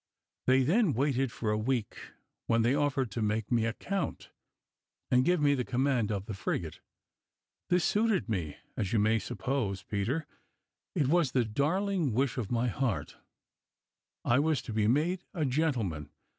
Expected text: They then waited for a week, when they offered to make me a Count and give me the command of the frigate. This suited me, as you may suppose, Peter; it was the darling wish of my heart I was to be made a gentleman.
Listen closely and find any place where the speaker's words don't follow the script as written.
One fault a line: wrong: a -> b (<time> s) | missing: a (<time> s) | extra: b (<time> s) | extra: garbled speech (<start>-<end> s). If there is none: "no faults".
no faults